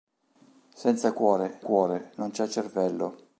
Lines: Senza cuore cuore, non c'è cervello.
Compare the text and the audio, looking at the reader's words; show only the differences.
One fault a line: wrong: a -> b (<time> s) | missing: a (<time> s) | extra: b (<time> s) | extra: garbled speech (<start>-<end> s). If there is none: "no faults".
no faults